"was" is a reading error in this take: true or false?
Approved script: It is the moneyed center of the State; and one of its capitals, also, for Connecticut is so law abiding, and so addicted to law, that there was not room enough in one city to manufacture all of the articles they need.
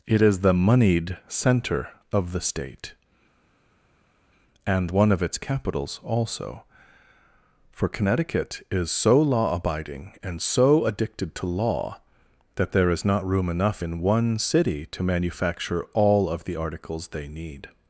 true